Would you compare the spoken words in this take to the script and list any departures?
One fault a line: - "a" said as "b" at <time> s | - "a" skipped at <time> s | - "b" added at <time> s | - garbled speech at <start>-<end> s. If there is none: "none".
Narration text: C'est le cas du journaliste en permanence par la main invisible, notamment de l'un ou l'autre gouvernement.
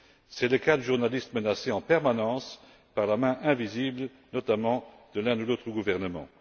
- "menacé" added at 1.3 s